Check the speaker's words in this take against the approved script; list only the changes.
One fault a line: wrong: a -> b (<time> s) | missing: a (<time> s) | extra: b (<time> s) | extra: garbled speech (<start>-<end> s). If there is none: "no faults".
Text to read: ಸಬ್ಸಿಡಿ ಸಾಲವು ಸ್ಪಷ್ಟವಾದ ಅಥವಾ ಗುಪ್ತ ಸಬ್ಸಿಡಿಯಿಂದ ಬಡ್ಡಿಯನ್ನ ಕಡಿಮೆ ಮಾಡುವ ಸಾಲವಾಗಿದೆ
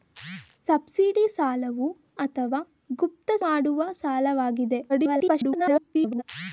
missing: ಸ್ಪಷ್ಟವಾದ (1.9 s)
missing: ಸಬ್ಸಿಡಿಯಿಂದ ಬಡ್ಡಿಯನ್ನ ಕಡಿಮೆ (3.3 s)
extra: garbled speech (4.9-6.2 s)